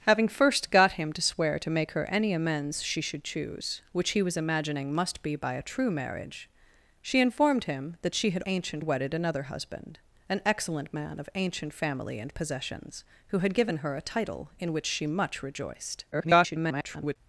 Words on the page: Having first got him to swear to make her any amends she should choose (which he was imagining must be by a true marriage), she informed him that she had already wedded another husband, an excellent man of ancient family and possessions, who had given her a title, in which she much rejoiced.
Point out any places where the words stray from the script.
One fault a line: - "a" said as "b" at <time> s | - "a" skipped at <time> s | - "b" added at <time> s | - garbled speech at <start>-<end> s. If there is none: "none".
- "already" said as "ancient" at 8.5 s
- garbled speech at 16.1-17.2 s